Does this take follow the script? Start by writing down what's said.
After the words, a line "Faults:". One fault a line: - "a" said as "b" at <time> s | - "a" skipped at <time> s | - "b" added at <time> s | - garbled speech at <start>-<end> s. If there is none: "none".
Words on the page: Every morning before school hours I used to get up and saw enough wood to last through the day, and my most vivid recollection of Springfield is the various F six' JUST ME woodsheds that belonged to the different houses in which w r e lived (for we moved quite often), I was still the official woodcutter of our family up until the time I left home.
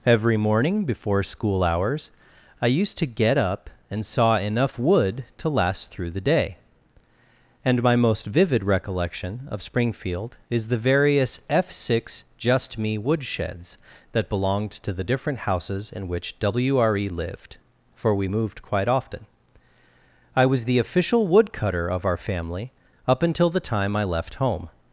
Every morning before school hours I used to get up and saw enough wood to last through the day, and my most vivid recollection of Springfield is the various F six' JUST ME woodsheds that belonged to the different houses in which w r e lived (for we moved quite often), I was the official woodcutter of our family up until the time I left home.
Faults:
- "still" skipped at 20.6 s